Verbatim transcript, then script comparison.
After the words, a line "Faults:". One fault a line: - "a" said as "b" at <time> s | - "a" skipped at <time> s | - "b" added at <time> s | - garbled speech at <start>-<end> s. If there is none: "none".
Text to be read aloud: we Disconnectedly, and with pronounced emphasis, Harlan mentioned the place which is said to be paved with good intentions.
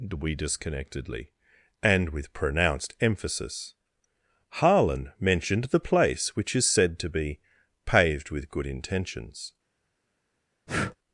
we Disconnectedly, and with pronounced emphasis, Harlan mentioned the place which is said to be paved with good intentions.
Faults:
none